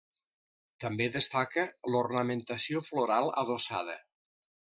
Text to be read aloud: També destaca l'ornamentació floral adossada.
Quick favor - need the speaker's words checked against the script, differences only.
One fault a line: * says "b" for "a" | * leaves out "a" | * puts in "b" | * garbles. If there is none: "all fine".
all fine